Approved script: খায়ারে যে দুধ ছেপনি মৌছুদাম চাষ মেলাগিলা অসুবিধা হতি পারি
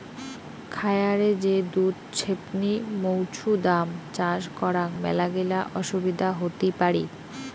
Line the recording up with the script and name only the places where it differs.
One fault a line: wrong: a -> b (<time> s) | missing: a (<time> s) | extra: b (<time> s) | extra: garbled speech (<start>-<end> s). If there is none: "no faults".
extra: করাং (4.6 s)